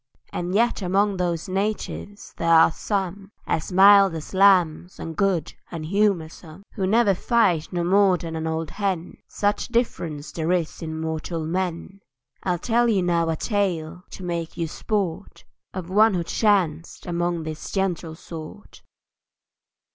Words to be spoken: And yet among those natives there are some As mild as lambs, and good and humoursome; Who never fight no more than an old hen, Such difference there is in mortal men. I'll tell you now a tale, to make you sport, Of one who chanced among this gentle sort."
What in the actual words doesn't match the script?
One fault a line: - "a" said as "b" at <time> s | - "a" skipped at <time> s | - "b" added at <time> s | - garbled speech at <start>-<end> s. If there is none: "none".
none